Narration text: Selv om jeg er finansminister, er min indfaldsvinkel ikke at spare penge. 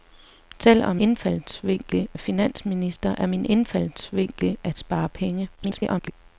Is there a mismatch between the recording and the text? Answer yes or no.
yes